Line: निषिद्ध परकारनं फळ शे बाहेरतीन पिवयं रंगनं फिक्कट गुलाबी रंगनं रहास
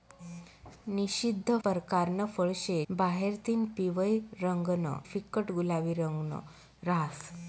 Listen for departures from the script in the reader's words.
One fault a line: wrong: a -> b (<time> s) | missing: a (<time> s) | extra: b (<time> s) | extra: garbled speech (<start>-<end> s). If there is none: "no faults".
no faults